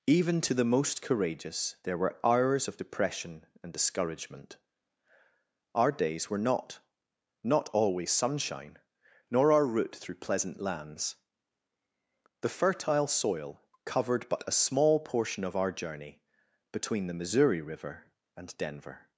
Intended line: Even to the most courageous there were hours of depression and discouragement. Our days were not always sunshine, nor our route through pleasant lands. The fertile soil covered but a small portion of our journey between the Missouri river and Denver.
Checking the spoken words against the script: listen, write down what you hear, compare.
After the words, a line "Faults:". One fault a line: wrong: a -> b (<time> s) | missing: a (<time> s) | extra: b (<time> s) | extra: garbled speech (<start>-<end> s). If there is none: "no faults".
Even to the most courageous there were hours of depression and discouragement. Our days were not not always sunshine, nor our route through pleasant lands. The fertile soil covered but a small portion of our journey between the Missouri river and Denver.
Faults:
extra: not (7.4 s)